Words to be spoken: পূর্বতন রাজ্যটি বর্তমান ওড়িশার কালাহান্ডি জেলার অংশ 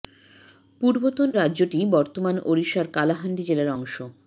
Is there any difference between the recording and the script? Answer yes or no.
no